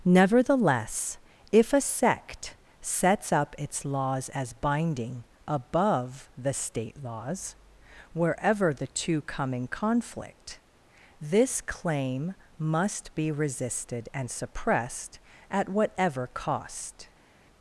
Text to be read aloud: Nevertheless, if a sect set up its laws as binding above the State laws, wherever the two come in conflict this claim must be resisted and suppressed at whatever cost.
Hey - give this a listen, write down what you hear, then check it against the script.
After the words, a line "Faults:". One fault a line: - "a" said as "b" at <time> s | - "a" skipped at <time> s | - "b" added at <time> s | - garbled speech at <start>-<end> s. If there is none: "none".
Nevertheless, if a sect sets up its laws as binding above the State laws, wherever the two come in conflict this claim must be resisted and suppressed at whatever cost.
Faults:
- "set" said as "sets" at 2.8 s